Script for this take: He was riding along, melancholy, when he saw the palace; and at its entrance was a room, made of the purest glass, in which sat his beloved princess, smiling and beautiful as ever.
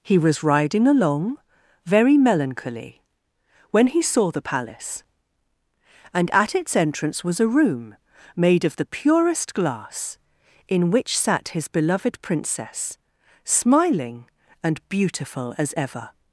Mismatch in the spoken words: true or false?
true